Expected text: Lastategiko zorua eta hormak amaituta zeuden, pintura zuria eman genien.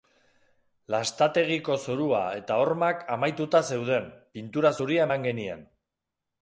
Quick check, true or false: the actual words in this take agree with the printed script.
true